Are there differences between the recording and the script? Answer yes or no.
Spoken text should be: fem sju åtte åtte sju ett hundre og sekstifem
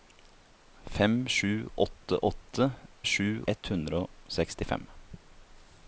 no